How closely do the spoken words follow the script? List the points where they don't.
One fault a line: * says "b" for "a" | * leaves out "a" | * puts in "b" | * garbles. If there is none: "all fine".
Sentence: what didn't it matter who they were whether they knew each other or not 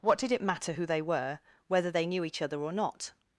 * says "did" for "didn't"